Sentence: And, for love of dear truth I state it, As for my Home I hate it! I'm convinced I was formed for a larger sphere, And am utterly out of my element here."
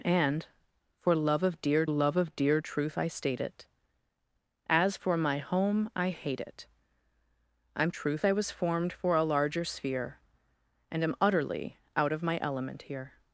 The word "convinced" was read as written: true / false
false